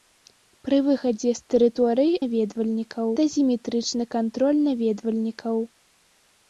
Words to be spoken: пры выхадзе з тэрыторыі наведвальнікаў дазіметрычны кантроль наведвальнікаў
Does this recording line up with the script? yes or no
yes